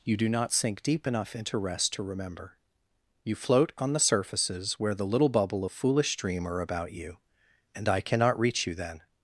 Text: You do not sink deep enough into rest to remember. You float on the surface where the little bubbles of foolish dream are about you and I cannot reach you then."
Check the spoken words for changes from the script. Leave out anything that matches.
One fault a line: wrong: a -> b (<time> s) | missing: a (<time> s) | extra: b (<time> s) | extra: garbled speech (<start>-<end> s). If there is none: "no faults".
wrong: surface -> surfaces (4.0 s)
wrong: bubbles -> bubble (5.3 s)